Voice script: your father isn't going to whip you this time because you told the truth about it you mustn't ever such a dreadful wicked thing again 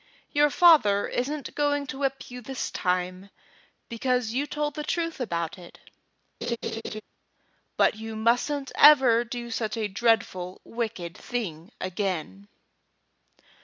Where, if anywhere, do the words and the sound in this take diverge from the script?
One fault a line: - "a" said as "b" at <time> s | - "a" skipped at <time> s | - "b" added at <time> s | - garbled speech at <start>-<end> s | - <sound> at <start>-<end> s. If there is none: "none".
- laugh at 6.4-7.0 s
- "but" added at 7.7 s
- "do" added at 9.2 s